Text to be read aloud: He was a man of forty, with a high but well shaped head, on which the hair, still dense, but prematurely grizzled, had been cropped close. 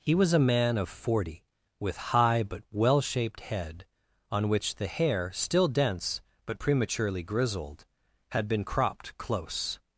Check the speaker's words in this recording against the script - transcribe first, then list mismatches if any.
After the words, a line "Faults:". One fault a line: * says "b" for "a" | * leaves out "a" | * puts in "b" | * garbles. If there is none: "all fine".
He was a man of forty, with high but well shaped head, on which the hair, still dense, but prematurely grizzled, had been cropped close.
Faults:
* leaves out "a"